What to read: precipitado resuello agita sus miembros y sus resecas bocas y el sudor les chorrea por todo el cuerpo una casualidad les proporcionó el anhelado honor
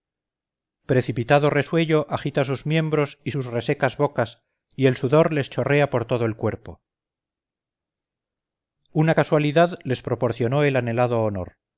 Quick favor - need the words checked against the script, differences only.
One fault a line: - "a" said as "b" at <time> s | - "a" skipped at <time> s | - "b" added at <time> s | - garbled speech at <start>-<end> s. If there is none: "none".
none